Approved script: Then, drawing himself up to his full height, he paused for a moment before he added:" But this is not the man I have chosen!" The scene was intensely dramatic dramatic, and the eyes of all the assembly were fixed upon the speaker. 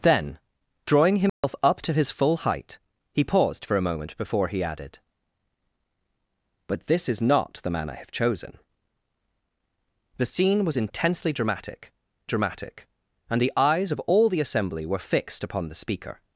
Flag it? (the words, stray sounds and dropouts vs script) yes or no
yes